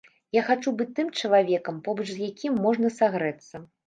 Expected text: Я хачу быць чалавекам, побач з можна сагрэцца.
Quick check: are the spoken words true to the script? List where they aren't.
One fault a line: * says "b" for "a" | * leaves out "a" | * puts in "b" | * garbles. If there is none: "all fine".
* puts in "тым"
* puts in "якім"